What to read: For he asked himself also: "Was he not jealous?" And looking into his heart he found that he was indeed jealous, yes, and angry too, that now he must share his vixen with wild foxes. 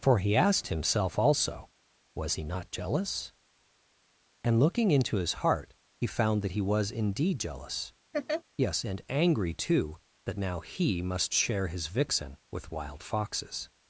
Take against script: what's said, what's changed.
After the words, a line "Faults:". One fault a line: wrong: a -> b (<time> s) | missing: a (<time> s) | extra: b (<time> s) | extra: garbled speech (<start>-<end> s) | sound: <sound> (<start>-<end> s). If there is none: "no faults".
For he asked himself also: "Was he not jealous?" And looking into his heart he found that he was indeed jealous, yes, and angry too, that now he must share his vixen with wild foxes.
Faults:
sound: laugh (8.1-8.4 s)